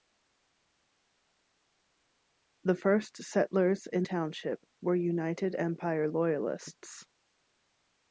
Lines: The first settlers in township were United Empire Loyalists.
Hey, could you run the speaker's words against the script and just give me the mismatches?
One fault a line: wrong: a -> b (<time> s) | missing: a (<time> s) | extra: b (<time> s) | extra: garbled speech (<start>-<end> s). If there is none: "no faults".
no faults